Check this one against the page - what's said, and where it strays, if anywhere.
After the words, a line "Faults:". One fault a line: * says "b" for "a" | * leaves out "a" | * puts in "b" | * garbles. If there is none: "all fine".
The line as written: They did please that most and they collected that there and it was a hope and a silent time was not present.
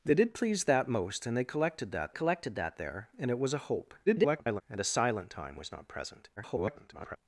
They did please that most and they collected that collected that there and it was a hope [garbled] and a silent time was not present. [garbled]
Faults:
* puts in "collected that"
* garbles
* garbles